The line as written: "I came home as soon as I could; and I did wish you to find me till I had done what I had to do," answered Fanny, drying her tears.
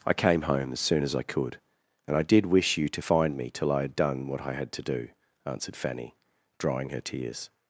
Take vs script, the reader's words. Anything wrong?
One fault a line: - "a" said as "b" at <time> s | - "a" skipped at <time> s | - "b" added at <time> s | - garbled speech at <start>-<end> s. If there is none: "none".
none